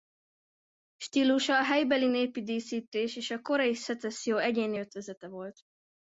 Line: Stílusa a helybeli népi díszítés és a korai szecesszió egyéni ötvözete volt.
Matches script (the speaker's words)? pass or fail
pass